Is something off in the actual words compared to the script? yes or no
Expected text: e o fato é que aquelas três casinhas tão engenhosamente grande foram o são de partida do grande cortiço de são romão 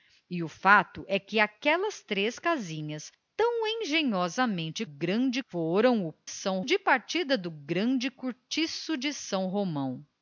no